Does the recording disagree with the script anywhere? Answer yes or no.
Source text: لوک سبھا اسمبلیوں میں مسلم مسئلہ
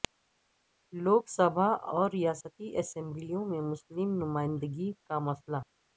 yes